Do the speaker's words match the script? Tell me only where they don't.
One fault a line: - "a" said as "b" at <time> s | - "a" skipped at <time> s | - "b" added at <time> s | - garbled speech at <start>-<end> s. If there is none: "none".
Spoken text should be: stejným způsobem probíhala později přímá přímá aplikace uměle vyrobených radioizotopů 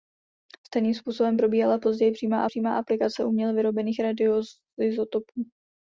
none